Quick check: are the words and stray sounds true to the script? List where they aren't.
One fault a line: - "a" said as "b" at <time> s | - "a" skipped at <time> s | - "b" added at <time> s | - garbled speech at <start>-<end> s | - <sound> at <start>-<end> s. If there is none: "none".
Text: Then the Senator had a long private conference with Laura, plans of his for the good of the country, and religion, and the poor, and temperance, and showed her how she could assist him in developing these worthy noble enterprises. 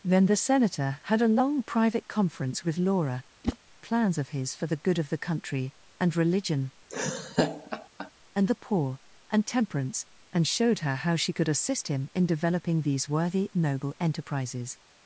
- whoosh at 3.4-3.6 s
- laugh at 6.9-8.1 s